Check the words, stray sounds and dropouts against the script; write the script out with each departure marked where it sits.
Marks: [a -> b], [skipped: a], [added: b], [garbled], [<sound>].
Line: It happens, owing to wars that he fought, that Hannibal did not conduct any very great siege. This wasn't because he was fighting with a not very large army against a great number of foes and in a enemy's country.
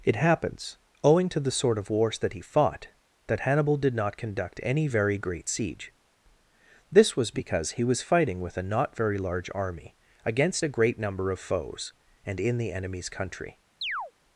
It happens, owing to [added: the sort of] wars that he fought, that Hannibal did not conduct any very great siege. This [wasn't -> was] because he was fighting with a not very large army against a great number of foes and in [a -> the] enemy's country. [chirp]